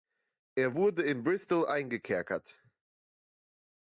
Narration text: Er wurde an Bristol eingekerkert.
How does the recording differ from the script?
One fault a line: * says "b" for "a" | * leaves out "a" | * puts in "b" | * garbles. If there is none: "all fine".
* says "in" for "an"